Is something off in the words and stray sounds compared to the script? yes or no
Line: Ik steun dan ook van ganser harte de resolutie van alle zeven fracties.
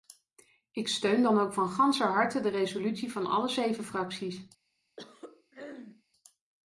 yes